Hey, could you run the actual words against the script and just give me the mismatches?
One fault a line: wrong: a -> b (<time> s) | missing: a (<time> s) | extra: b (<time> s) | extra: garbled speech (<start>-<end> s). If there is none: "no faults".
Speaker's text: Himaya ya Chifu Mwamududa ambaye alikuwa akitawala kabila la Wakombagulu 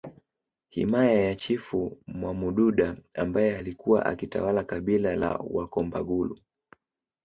no faults